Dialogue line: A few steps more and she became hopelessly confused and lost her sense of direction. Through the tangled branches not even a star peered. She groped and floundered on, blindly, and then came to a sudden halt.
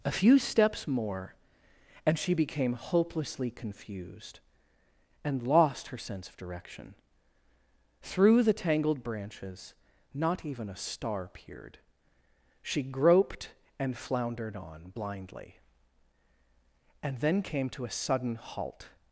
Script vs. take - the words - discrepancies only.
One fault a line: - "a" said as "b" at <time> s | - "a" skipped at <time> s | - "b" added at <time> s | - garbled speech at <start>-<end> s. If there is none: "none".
none